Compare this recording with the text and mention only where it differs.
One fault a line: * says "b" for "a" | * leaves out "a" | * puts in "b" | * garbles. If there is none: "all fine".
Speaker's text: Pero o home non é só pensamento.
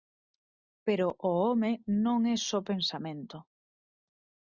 all fine